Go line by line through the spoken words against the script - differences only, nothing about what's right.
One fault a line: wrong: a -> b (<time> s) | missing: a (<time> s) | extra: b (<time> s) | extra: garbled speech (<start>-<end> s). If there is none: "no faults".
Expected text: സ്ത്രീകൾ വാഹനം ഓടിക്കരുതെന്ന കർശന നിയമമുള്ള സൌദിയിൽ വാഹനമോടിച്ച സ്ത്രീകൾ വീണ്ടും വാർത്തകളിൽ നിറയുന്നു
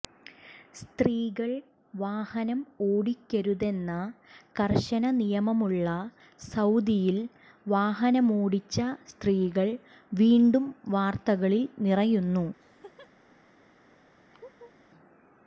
no faults